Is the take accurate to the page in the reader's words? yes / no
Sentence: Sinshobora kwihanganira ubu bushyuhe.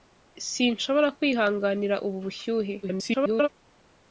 no